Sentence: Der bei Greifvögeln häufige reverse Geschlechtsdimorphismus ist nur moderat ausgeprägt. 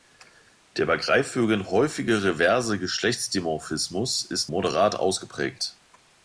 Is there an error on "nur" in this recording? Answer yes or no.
yes